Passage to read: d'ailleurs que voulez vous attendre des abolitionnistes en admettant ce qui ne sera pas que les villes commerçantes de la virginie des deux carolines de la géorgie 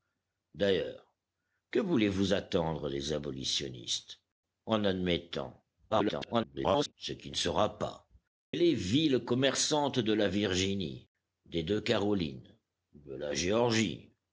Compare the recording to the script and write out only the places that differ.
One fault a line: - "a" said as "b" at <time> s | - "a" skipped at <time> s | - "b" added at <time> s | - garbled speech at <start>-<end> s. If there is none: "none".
- garbled speech at 5.9-6.9 s
- "que" skipped at 8.1 s